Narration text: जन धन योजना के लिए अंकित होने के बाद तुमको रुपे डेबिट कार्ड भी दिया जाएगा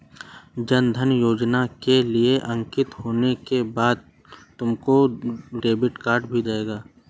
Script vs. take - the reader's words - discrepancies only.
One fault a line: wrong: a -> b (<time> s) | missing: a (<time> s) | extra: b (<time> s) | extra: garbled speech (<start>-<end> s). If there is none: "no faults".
missing: रुपे (5.0 s)
missing: दिया (6.4 s)